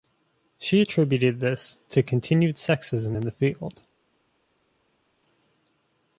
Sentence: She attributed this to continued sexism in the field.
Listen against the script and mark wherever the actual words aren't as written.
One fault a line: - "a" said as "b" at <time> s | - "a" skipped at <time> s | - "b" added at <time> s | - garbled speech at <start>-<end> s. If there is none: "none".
none